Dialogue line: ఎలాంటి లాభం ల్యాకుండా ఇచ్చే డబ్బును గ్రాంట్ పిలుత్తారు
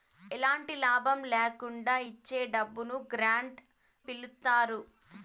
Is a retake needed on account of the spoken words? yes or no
no